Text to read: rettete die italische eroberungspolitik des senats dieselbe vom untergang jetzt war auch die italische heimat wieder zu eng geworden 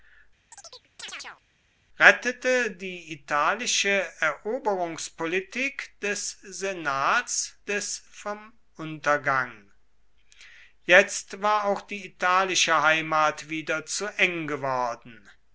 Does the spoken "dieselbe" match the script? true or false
false